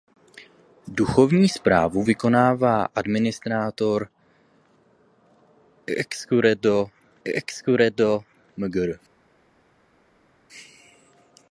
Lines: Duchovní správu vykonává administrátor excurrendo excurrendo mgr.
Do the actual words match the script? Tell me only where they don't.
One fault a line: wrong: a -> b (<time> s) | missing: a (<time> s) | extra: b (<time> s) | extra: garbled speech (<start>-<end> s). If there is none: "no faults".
no faults